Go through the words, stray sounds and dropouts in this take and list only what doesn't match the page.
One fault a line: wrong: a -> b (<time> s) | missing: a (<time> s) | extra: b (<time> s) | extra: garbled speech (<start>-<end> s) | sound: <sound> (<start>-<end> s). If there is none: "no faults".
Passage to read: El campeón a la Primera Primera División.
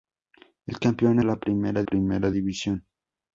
no faults